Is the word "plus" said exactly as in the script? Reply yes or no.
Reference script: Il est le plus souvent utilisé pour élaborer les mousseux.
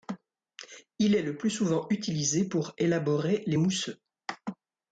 yes